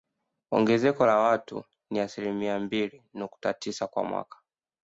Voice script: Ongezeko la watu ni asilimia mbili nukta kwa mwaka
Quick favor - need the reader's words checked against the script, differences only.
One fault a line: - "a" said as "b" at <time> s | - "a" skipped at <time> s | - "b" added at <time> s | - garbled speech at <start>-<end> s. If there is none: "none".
- "tisa" added at 3.5 s